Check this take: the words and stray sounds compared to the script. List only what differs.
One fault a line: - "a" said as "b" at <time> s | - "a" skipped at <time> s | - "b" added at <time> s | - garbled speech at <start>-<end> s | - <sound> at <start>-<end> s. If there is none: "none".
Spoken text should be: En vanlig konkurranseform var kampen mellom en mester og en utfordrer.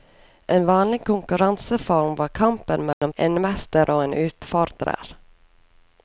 - dropout at 2.9-3.0 s